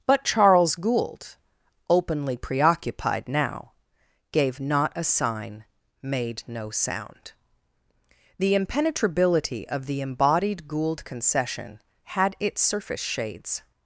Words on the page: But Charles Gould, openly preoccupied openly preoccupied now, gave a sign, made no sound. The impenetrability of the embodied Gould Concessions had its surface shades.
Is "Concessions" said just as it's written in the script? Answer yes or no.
no